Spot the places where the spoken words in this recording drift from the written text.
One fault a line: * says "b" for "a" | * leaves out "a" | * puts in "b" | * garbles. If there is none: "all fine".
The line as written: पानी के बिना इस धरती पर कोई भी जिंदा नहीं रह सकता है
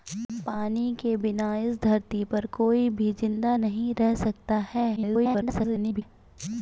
* garbles